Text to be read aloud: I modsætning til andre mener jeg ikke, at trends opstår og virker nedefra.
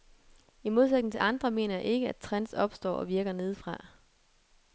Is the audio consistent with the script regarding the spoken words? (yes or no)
yes